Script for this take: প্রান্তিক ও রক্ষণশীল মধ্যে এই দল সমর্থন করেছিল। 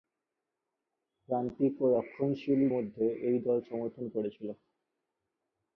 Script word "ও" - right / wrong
right